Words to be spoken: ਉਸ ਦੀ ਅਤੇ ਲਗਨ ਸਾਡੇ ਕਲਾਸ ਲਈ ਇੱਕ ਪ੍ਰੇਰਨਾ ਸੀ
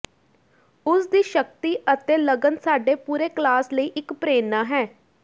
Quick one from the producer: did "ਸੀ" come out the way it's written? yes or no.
no